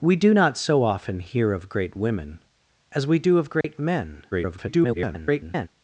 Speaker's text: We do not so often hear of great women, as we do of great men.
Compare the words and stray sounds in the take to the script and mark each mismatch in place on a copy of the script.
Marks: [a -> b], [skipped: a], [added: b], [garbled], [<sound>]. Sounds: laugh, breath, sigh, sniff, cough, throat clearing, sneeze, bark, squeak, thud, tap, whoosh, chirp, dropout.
We do not so often hear of great women, as we do of great [dropout] men. [garbled]